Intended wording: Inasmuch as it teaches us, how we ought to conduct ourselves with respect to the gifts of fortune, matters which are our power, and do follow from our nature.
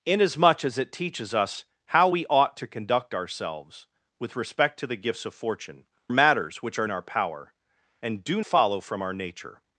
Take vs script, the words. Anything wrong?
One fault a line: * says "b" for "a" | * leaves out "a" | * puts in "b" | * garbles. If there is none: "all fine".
all fine